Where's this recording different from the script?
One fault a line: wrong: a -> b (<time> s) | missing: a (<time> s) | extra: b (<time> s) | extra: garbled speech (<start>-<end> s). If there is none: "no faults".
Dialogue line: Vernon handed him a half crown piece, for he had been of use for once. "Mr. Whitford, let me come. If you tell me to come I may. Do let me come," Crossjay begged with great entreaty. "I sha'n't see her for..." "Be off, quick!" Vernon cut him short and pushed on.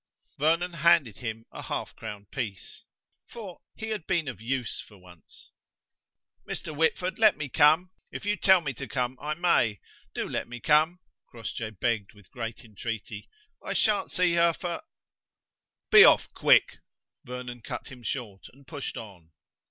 no faults